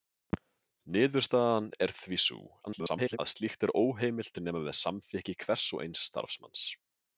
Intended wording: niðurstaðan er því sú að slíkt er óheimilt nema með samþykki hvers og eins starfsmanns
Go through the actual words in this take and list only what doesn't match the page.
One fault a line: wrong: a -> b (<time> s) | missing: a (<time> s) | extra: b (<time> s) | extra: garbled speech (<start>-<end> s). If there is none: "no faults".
extra: garbled speech (2.7-3.2 s)